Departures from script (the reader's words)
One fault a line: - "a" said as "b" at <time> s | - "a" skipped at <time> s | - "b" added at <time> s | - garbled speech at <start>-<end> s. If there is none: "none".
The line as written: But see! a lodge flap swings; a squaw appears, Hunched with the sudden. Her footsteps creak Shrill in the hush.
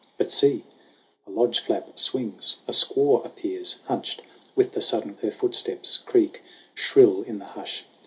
none